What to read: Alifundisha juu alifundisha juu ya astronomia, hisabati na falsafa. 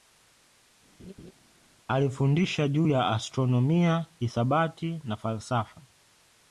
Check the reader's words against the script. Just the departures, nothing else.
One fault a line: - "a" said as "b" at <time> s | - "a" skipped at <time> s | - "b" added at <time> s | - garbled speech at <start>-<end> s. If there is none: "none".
- "alifundisha juu" skipped at 2.9 s